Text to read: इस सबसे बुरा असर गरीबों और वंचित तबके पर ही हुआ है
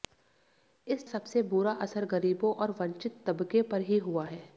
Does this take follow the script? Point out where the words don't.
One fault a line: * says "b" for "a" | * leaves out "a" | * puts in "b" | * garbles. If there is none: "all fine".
all fine